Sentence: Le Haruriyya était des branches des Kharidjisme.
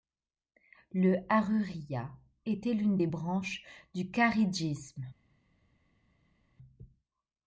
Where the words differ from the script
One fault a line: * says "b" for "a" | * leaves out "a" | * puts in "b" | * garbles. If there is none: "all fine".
* puts in "l'une"
* says "du" for "des"